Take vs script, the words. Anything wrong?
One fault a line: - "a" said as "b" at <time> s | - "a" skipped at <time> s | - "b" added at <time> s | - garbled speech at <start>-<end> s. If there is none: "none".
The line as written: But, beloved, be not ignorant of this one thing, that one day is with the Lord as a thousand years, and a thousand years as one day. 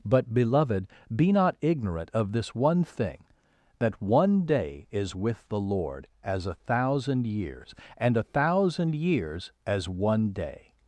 none